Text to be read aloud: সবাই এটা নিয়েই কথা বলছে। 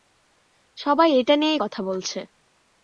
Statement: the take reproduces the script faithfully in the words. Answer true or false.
true